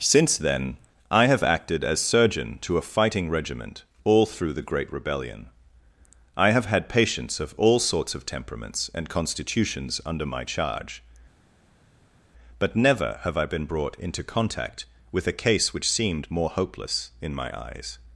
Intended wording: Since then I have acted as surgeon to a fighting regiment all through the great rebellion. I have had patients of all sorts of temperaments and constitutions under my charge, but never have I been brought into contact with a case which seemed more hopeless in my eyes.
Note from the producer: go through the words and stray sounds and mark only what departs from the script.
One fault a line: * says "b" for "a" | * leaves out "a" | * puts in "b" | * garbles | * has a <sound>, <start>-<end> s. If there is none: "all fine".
all fine